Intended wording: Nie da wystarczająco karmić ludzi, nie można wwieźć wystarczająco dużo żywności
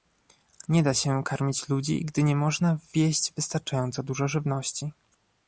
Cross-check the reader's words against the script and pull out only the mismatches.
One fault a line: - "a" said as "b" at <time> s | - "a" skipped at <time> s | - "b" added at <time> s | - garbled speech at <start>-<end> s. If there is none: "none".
- "wystarczająco" said as "się" at 0.9 s
- "gdy" added at 2.0 s